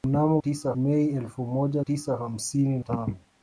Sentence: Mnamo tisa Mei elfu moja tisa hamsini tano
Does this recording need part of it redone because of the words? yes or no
no